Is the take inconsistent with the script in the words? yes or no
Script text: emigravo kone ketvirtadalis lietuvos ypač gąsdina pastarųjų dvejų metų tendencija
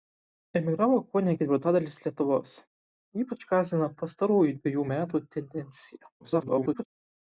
yes